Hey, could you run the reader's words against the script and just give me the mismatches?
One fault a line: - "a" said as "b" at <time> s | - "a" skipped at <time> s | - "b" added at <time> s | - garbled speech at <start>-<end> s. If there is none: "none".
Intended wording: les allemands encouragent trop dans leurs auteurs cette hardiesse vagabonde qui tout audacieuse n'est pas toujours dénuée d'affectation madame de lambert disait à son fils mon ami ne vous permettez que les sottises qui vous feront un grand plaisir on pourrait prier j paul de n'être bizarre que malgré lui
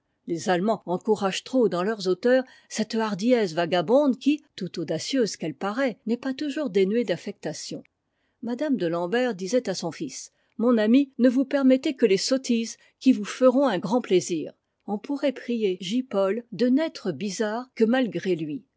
- "qu'elle paraît" added at 5.3 s